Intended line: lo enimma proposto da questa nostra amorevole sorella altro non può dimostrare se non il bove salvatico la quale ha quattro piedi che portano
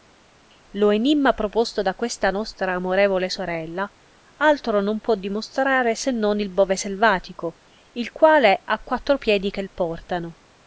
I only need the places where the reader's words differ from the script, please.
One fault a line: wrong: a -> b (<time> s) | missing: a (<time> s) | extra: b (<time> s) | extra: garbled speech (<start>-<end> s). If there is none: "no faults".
wrong: la -> il (7.9 s)